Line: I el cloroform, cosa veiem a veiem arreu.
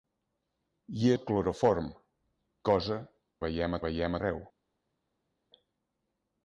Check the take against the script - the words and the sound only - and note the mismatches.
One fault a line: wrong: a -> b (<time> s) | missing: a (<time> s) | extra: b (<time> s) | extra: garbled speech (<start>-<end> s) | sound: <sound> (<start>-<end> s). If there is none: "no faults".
no faults